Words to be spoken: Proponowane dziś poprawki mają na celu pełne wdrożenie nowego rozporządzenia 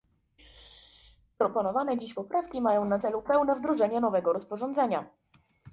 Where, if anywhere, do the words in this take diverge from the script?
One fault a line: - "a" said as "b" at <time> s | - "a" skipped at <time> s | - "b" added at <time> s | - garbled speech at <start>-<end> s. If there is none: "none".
none